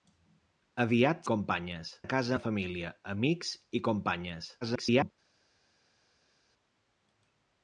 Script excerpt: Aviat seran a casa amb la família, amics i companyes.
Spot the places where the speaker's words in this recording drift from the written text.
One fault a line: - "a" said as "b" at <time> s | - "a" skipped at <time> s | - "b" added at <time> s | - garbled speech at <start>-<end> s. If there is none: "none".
- "seran" said as "companyes" at 1.3 s
- "amb" skipped at 2.4 s
- garbled speech at 4.6-5.1 s